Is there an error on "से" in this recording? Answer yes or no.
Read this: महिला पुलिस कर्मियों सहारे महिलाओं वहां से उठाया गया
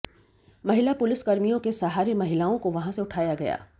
no